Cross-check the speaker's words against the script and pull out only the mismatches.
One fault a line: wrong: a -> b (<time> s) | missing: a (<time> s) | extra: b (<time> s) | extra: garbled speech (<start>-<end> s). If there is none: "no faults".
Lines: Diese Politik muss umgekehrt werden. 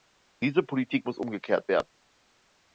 no faults